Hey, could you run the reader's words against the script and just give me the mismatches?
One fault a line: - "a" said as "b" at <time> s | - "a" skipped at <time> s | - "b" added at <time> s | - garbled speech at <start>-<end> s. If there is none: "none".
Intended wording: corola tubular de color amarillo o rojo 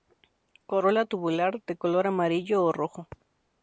none